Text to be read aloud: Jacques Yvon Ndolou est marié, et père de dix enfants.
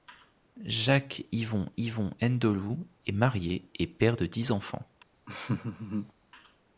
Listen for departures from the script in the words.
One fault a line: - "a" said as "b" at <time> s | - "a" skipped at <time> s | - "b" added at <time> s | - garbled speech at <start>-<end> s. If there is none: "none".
- "Yvon" added at 1.8 s